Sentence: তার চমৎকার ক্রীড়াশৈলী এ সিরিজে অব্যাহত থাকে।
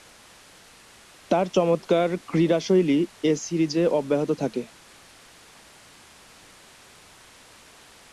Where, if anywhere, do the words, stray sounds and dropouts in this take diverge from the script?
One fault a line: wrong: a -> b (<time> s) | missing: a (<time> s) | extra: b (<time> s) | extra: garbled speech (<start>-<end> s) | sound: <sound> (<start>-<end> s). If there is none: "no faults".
no faults